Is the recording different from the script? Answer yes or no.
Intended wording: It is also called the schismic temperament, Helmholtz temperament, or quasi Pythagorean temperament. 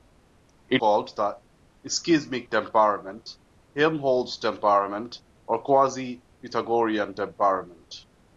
yes